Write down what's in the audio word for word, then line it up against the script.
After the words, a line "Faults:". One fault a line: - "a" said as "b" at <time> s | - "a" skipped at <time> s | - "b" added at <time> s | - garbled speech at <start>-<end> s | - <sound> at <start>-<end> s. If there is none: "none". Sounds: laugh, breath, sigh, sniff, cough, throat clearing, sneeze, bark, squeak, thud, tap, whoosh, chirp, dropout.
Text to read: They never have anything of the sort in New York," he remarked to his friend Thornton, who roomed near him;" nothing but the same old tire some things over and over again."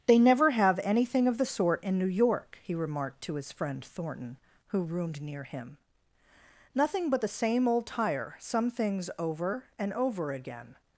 They never have anything of the sort in New York," he remarked to his friend Thornton, who roomed near him;" nothing but the same old tire some things over and over again."
Faults:
none